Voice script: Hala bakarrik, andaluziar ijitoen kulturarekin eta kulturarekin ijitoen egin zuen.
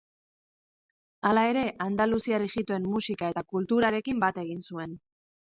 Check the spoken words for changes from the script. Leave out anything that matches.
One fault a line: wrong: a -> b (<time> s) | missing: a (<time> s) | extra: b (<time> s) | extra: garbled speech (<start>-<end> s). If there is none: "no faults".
wrong: bakarrik -> ere (1.5 s)
wrong: kulturarekin -> musika (3.0 s)
wrong: ijitoen -> bat (4.3 s)